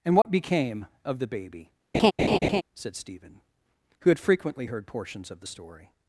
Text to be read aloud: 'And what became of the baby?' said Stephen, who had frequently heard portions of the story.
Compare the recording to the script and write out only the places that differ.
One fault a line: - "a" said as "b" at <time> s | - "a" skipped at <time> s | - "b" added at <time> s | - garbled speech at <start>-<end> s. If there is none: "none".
none